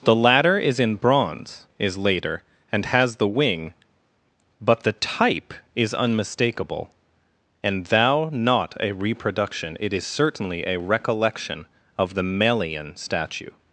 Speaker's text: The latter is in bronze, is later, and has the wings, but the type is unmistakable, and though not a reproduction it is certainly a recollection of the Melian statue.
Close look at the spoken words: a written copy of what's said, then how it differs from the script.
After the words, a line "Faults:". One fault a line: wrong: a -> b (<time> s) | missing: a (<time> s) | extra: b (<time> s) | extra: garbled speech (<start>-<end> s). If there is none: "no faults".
The latter is in bronze, is later, and has the wing, but the type is unmistakable, and thou not a reproduction it is certainly a recollection of the Melian statue.
Faults:
wrong: wings -> wing (3.3 s)
wrong: though -> thou (7.9 s)